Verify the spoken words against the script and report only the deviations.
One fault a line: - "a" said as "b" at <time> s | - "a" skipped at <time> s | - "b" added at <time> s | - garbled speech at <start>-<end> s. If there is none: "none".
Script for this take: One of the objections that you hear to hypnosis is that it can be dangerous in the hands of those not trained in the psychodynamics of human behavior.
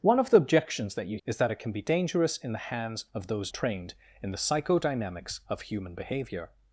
- "hear to hypnosis" skipped at 1.2 s
- "not" skipped at 3.5 s